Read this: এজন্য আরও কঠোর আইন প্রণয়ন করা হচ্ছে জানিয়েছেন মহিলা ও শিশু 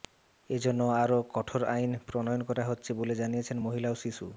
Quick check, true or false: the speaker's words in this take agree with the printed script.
false